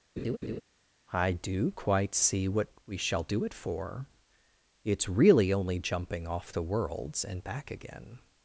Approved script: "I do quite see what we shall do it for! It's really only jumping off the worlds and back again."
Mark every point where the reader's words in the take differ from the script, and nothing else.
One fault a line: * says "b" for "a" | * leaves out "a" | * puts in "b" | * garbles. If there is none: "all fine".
all fine